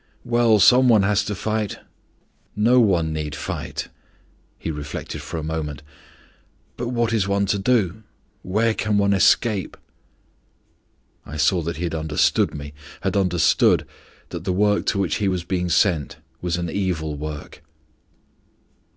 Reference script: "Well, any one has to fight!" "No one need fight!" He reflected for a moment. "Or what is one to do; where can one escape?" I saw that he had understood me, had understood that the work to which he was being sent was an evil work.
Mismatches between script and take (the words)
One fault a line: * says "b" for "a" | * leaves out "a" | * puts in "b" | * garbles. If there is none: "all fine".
* says "some" for "any"
* says "But" for "Or"